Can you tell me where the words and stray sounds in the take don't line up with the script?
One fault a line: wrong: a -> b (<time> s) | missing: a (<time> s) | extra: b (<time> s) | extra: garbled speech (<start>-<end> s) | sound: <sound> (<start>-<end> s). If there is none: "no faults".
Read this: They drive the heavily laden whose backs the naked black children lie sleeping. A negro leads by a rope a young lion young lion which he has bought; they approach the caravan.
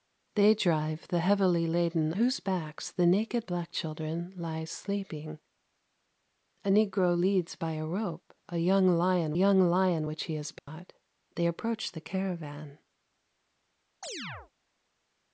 sound: dropout (10.6-10.7 s)
sound: chirp (14.0-14.5 s)